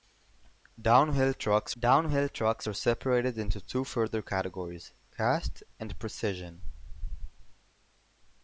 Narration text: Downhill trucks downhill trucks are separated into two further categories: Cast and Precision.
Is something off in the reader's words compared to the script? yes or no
no